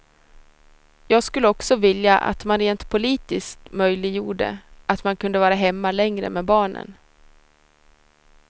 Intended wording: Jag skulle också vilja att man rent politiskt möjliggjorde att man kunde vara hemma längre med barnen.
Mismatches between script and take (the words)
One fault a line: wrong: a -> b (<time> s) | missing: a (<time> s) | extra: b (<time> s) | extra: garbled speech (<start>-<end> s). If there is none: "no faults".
no faults